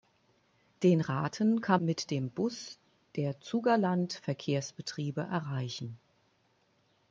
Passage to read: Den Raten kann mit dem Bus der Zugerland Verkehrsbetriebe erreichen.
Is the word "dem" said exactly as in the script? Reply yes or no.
yes